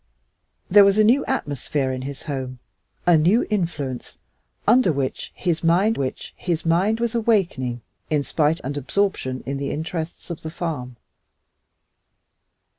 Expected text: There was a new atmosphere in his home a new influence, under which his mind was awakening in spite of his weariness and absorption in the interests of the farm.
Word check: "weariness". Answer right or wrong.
wrong